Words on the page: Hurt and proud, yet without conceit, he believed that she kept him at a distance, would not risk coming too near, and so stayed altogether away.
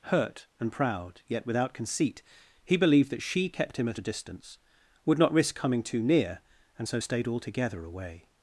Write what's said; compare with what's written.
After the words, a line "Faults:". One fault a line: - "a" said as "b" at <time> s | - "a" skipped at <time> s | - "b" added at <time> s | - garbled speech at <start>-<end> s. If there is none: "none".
Hurt and proud, yet without conceit, he believed that she kept him at a distance, would not risk coming too near, and so stayed altogether away.
Faults:
none